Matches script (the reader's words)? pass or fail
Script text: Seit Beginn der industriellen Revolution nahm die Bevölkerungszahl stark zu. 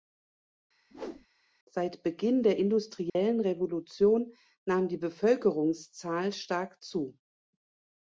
pass